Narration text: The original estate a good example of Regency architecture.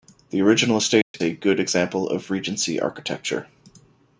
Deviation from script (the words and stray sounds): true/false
true